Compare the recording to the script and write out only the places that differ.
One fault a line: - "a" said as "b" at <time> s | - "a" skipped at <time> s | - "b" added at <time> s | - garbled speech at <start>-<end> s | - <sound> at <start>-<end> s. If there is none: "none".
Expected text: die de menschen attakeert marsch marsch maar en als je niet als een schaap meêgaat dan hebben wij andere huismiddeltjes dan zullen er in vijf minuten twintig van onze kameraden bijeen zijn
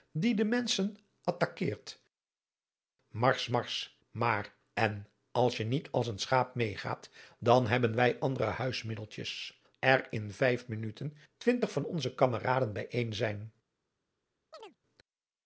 - "dan zullen" skipped at 9.6 s
- chirp at 14.5-14.8 s